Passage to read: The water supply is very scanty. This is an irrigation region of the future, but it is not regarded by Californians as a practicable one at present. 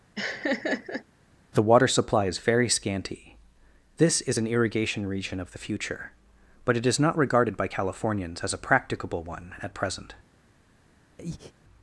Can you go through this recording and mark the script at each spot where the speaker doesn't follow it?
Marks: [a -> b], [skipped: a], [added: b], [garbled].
The water supply is very scanty. This is an irrigation region of the future, but it is not regarded by Californians as a practicable one at present.